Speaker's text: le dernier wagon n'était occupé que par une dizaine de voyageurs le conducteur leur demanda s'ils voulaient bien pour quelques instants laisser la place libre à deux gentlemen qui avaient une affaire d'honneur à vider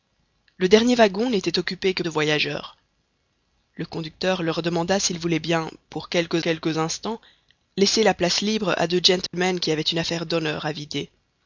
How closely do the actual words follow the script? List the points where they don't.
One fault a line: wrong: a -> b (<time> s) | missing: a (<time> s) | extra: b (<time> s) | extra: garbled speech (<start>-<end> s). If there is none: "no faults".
missing: par une dizaine (2.0 s)
extra: quelques (6.4 s)